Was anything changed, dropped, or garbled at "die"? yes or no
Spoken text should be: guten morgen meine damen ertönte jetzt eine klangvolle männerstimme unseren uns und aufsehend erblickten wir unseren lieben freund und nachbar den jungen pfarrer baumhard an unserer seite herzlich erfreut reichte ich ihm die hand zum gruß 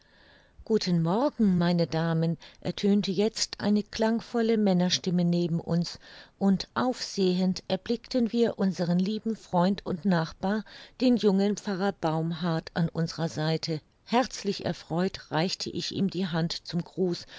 no